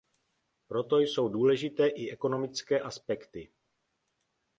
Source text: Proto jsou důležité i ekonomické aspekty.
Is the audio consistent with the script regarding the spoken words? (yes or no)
yes